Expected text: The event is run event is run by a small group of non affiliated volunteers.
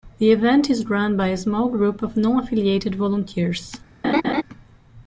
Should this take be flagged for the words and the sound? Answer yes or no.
yes